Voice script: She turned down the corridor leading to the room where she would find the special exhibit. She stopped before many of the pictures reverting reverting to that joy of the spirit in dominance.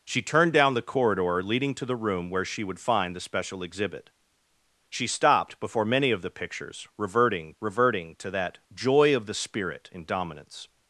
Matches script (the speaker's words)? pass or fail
pass